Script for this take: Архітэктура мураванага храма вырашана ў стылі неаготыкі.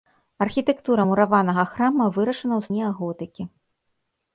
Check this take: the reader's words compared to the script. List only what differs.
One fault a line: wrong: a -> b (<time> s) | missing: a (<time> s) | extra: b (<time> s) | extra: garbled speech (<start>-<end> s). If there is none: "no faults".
missing: стылі (2.7 s)